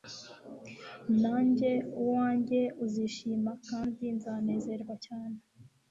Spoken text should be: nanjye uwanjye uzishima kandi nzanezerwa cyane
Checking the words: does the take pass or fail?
pass